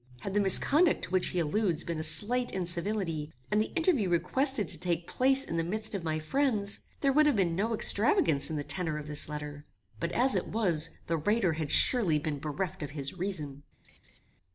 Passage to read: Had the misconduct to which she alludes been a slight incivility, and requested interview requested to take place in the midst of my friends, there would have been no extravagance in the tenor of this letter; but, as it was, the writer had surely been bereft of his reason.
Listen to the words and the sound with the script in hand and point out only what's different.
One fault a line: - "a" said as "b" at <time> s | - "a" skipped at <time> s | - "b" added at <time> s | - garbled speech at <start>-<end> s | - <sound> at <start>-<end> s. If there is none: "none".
- "she" said as "he" at 1.3 s
- "requested" said as "the" at 3.6 s
- laugh at 13.8-14.2 s